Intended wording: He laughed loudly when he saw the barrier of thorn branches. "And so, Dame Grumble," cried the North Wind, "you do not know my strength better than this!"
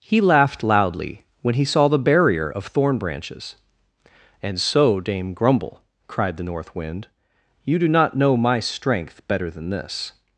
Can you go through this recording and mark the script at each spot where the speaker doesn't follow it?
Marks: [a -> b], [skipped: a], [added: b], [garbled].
He laughed loudly when he saw the barrier of thorn branches. "And so, Dame Grumble," cried the North Wind, "you do not know my strength better than this!"